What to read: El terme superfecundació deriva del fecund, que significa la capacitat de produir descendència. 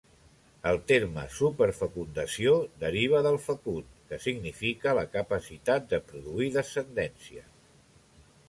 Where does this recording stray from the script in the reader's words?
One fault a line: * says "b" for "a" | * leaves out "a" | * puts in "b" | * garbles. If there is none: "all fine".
all fine